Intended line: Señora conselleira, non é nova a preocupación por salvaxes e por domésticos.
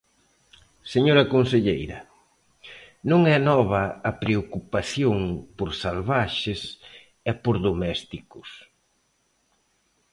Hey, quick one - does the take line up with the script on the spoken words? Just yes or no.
yes